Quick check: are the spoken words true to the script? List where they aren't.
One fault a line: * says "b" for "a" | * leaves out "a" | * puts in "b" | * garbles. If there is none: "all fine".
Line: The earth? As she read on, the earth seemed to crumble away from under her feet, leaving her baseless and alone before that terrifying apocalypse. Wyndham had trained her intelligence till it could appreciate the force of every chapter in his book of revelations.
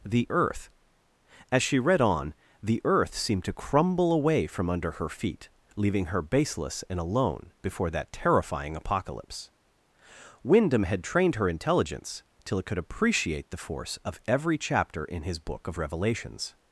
all fine